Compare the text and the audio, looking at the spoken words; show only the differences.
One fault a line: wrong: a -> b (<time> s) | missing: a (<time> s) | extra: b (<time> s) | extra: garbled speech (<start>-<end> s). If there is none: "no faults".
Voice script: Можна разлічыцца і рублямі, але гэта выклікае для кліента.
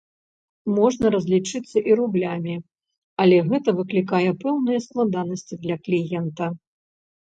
extra: пэўныя складанасці (4.4 s)